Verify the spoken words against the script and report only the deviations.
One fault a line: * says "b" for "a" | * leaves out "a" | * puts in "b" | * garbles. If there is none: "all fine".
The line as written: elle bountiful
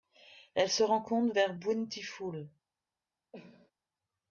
* puts in "se rencontre vers"